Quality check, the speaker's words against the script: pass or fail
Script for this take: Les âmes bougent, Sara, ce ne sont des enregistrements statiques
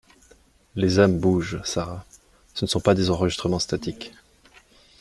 fail